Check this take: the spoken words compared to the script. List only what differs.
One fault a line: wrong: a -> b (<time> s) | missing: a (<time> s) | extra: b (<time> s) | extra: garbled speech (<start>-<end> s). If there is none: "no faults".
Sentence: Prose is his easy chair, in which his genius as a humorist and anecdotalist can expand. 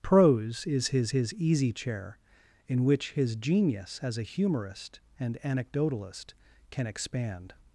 extra: his (1.1 s)